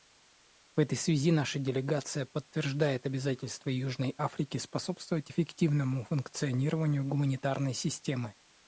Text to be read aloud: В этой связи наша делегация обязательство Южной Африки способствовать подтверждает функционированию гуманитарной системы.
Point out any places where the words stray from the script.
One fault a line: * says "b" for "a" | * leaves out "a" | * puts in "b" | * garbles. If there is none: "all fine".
* puts in "подтверждает"
* says "эффективному" for "подтверждает"